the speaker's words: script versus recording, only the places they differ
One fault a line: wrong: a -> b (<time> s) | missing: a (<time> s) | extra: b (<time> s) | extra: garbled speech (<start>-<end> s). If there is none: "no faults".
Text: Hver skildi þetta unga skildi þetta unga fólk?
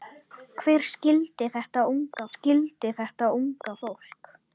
no faults